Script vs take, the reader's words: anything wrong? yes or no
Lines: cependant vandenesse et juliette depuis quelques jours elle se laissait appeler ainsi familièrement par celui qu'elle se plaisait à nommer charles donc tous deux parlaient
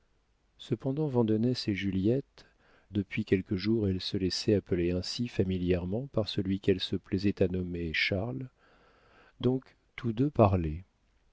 no